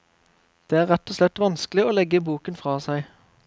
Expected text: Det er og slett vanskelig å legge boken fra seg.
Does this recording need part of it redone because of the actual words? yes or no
yes